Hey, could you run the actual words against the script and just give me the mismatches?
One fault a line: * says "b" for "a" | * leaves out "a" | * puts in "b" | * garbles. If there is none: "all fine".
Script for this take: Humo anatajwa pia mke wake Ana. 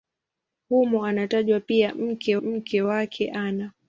* puts in "mke"